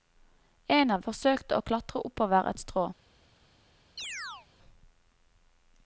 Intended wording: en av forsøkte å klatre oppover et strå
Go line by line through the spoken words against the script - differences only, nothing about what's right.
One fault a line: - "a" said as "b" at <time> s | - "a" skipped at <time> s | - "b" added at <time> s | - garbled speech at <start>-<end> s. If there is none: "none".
none